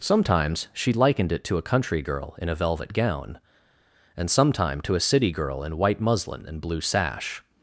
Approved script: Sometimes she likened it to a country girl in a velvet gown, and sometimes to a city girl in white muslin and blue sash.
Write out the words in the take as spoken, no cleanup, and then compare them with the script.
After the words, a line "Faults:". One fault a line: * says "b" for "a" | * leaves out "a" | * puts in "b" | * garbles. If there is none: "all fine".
Sometimes she likened it to a country girl in a velvet gown, and sometime to a city girl in white muslin and blue sash.
Faults:
* says "sometime" for "sometimes"